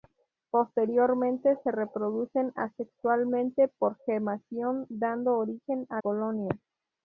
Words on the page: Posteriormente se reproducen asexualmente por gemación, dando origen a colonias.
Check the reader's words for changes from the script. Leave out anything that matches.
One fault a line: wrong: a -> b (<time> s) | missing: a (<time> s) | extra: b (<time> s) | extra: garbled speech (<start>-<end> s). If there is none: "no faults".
no faults